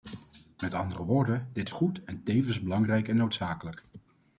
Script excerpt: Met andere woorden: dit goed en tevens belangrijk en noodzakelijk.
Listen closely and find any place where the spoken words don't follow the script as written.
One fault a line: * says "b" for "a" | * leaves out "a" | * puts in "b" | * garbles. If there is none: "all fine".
all fine